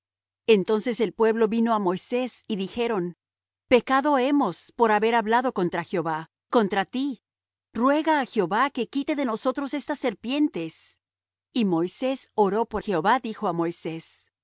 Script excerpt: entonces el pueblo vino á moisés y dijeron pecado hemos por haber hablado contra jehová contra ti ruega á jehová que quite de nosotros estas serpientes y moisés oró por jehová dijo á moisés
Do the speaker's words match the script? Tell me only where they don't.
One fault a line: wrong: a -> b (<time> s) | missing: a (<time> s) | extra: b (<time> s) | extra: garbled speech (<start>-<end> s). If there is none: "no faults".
no faults